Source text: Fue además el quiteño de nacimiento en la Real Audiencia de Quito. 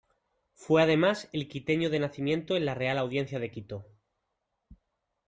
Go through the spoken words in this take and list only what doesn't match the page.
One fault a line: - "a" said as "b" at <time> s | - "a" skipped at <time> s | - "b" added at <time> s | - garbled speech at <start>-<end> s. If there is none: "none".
none